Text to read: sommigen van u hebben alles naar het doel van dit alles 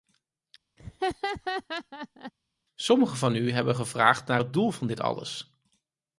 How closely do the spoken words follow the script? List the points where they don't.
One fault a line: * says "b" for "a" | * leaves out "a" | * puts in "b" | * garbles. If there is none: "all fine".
* says "gevraagd" for "alles"